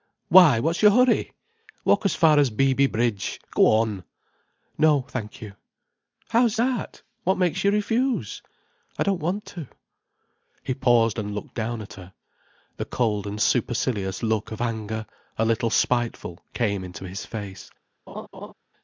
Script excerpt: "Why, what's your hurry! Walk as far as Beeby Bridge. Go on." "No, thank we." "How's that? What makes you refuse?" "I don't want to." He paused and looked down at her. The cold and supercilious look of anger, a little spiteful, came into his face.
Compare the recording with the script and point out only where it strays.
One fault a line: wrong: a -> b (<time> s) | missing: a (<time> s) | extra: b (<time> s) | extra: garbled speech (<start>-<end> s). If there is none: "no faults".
wrong: we -> you (5.4 s)